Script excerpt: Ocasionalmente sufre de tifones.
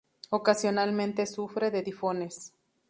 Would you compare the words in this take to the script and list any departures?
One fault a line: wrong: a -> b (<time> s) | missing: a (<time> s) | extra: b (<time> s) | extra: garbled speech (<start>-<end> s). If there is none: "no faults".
no faults